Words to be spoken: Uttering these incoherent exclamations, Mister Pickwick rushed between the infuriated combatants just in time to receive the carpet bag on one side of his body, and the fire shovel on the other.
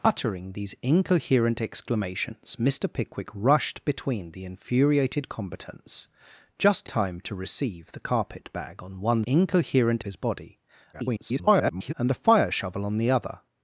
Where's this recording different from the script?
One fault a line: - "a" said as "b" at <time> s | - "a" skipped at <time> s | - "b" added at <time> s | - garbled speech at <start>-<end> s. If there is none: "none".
- "in" skipped at 6.9 s
- "side" said as "incoherent" at 9.2 s
- garbled speech at 10.9-11.9 s